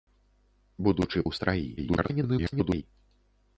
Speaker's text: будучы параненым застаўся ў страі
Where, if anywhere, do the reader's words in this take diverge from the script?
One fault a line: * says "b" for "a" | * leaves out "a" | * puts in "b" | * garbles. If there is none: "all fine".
* leaves out "параненым застаўся"
* garbles